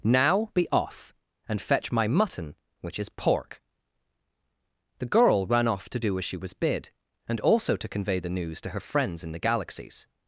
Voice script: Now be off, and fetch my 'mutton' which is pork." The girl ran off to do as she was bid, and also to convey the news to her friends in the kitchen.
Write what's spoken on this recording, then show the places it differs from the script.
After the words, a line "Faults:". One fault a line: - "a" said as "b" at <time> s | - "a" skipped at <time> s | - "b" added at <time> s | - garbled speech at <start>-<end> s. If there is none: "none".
Now be off, and fetch my 'mutton' which is pork." The girl ran off to do as she was bid, and also to convey the news to her friends in the galaxies.
Faults:
- "kitchen" said as "galaxies" at 9.4 s